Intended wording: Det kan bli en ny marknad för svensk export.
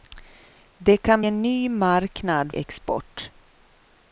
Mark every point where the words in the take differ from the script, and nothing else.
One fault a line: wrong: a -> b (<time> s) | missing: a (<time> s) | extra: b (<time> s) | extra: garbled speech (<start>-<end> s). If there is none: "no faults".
missing: bli (1.2 s)
missing: för svensk (2.5 s)